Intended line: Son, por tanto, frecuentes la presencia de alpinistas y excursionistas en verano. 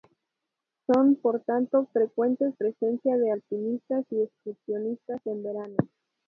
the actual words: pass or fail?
fail